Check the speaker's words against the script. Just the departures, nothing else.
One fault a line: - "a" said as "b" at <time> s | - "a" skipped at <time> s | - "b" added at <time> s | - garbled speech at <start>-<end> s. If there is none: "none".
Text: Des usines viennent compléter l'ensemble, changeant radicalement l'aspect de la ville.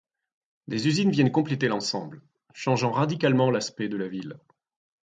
none